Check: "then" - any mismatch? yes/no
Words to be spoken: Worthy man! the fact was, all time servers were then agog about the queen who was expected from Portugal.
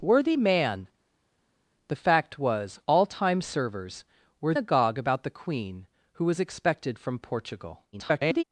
yes